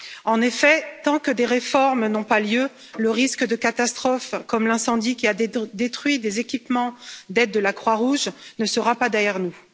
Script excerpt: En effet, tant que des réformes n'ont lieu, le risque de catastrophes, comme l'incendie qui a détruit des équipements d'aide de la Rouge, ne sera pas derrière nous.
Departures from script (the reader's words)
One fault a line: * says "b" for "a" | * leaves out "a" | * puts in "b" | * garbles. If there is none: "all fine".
* puts in "pas"
* puts in "Croix"